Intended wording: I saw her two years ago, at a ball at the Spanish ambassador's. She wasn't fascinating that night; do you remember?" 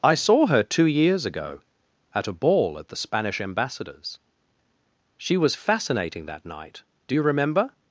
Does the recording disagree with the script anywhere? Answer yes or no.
yes